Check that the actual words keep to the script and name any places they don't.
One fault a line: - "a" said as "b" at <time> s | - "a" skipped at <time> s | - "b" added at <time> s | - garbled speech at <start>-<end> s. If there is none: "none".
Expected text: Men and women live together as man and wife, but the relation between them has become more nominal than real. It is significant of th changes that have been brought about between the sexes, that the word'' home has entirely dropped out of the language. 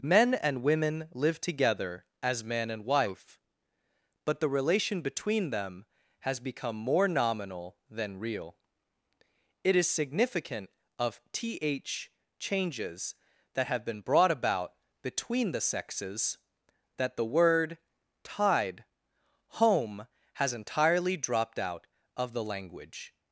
- "tied" added at 18.2 s